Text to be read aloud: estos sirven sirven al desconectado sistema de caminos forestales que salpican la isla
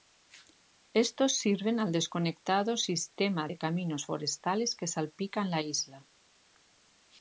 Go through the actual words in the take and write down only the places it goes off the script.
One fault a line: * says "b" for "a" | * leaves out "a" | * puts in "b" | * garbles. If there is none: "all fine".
* leaves out "sirven"